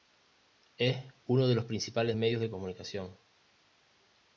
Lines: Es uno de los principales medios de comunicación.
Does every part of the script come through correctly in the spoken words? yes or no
yes